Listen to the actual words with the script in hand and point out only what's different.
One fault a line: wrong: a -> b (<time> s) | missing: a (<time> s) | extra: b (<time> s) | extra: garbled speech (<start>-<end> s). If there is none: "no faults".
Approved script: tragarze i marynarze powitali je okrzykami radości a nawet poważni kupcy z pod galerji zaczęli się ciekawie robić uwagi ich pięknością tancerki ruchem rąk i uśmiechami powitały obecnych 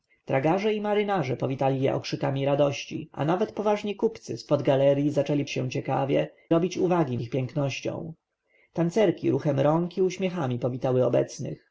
no faults